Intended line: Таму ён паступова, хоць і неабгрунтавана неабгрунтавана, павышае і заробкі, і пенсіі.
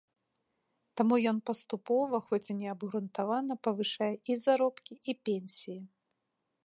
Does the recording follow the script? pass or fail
fail